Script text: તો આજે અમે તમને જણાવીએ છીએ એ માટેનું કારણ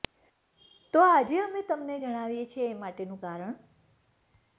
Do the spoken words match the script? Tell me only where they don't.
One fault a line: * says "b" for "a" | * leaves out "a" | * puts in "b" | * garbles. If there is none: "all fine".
all fine